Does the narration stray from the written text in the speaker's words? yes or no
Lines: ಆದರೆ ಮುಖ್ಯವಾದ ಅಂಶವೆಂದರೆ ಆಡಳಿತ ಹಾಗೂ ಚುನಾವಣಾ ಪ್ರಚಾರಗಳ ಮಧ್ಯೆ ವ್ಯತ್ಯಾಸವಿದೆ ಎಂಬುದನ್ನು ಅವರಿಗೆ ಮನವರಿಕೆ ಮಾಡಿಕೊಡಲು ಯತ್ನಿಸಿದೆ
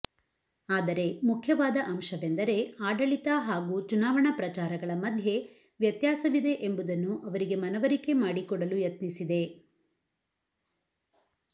no